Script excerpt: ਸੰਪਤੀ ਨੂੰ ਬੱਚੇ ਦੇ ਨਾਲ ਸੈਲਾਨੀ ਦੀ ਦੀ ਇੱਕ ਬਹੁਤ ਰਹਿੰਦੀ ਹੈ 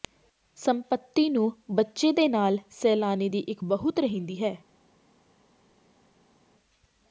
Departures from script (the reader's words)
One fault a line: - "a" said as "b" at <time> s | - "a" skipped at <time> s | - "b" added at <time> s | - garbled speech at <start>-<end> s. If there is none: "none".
- "ਦੀ" skipped at 3.4 s